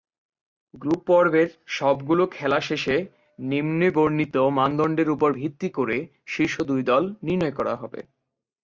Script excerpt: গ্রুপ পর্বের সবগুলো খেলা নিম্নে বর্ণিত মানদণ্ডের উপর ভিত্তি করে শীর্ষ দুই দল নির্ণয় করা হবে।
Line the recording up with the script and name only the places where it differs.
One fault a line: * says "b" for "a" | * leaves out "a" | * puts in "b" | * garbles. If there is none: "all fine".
* puts in "শেষে"